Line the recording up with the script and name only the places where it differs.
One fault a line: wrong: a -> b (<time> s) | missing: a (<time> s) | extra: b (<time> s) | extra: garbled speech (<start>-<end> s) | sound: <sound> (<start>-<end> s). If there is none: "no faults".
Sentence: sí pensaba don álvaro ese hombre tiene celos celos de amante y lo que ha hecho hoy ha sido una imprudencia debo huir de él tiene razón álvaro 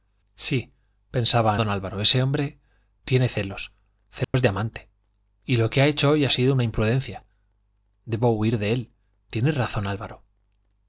sound: dropout (4.2-4.3 s)